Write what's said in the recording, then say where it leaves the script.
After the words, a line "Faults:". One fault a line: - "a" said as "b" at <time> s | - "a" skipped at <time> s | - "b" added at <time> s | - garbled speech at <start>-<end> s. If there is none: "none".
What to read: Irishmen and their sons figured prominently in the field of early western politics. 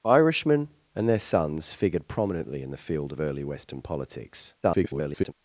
Irishmen and their sons figured prominently in the field of early western politics. [garbled]
Faults:
- garbled speech at 4.6-5.3 s